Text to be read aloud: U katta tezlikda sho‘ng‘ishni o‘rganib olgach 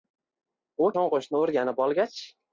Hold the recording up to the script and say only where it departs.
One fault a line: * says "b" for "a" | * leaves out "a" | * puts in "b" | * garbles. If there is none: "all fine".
* leaves out "katta tezlikda"